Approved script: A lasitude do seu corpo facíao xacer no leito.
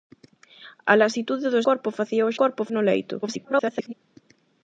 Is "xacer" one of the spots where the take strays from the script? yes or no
yes